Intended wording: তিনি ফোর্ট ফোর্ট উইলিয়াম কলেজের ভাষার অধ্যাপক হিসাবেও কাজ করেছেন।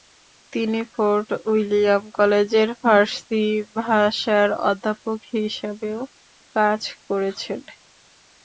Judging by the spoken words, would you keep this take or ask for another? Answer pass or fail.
fail